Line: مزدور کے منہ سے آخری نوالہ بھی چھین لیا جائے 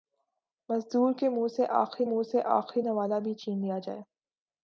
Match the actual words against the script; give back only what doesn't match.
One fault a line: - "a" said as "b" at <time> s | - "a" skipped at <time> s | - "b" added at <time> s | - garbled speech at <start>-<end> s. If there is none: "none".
- "منہ سے آخری" added at 2.0 s